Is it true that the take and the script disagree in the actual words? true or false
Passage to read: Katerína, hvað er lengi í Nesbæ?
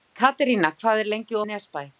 false